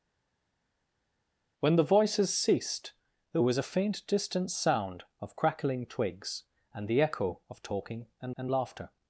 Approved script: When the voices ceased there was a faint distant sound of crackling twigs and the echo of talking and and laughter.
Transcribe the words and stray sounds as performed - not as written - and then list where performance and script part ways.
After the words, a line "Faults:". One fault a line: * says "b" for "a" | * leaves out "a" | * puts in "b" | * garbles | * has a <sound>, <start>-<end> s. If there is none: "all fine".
When the voices ceased there was a faint distant sound of crackling twigs and the echo of talking and and laughter.
Faults:
all fine